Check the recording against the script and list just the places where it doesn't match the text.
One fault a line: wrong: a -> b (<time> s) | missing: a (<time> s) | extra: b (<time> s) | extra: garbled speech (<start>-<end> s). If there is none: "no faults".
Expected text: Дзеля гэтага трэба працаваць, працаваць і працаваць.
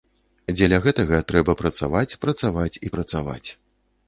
no faults